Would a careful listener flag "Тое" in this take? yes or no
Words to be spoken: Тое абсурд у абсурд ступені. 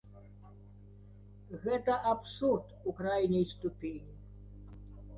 yes